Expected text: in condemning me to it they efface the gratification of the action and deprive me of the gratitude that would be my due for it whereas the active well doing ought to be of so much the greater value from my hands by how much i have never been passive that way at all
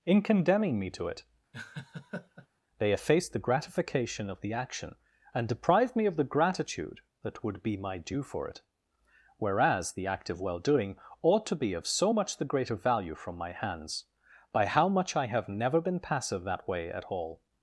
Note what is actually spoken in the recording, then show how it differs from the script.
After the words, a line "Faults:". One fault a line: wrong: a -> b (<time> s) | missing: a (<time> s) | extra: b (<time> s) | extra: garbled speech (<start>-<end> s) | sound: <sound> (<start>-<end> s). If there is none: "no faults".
in condemning me to it they efface the gratification of the action and deprive me of the gratitude that would be my due for it whereas the act of well doing ought to be of so much the greater value from my hands by how much i have never been passive that way at all
Faults:
sound: laugh (1.5-2.5 s)
wrong: active -> act of (10.1 s)